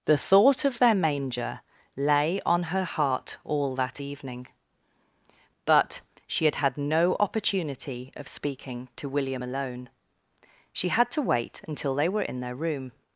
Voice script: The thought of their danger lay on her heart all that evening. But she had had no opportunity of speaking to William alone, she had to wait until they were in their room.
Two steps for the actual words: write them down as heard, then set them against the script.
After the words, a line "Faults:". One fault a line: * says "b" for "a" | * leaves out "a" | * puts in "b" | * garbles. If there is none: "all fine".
The thought of their manger lay on her heart all that evening. But she had had no opportunity of speaking to William alone, she had to wait until they were in their room.
Faults:
* says "manger" for "danger"